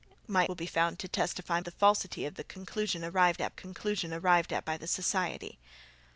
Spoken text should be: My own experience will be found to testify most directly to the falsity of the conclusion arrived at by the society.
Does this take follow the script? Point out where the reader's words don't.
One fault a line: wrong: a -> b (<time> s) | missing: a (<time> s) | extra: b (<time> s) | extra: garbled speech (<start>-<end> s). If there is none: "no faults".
missing: own experience (0.5 s)
wrong: most directly to -> the falsity of (1.6 s)
wrong: falsity of the -> conclusion arrived at (2.4 s)